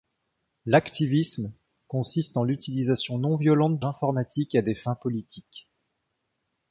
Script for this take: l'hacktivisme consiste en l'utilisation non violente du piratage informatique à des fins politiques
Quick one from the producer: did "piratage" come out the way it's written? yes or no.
no